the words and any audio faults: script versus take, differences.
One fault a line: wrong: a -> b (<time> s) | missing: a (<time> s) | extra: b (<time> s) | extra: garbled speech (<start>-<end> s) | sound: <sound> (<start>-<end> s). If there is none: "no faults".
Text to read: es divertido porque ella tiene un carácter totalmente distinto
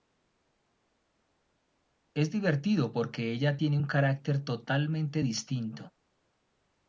no faults